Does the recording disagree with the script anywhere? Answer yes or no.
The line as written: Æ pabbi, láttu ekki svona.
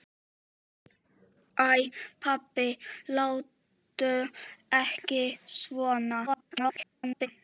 yes